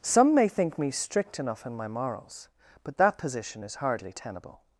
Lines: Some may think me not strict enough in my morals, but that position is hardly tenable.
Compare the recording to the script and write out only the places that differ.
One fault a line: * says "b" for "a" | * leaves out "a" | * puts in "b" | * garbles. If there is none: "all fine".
* leaves out "not"